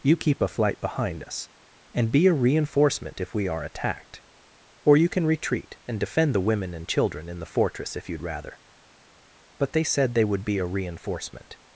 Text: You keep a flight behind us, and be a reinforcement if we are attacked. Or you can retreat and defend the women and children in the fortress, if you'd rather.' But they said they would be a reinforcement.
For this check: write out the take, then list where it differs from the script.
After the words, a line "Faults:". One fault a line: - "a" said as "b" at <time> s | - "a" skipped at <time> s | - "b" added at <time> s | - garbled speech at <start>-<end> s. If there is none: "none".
You keep a flight behind us, and be a reinforcement if we are attacked. Or you can retreat and defend the women and children in the fortress, if you'd rather.' But they said they would be a reinforcement.
Faults:
none